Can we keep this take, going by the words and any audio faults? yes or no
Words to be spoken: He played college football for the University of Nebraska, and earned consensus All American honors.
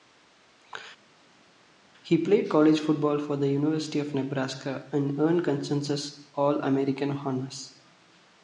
yes